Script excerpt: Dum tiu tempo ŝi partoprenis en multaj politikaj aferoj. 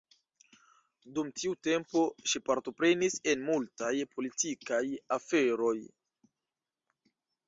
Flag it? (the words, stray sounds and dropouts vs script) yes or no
no